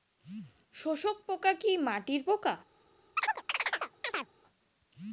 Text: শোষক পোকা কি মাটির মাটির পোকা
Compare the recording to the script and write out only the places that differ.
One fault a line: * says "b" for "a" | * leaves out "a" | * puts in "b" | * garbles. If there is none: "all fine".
* leaves out "মাটির"